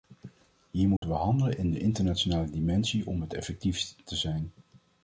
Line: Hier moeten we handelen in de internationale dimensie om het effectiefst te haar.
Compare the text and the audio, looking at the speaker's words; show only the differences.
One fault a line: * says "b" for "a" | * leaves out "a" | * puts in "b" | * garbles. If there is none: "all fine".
* says "zijn" for "haar"